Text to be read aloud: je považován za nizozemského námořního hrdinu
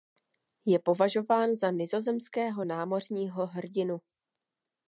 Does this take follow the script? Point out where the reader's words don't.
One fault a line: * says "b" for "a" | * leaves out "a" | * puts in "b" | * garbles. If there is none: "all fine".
all fine